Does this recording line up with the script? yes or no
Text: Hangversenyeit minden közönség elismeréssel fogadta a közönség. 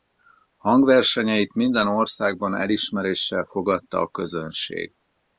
no